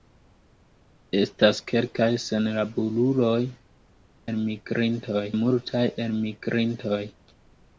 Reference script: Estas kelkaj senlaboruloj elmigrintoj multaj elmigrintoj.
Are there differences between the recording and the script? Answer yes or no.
no